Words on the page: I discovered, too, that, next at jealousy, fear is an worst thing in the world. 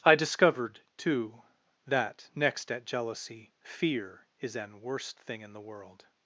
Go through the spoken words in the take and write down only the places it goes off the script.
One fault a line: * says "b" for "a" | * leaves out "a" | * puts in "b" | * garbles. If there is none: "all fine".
all fine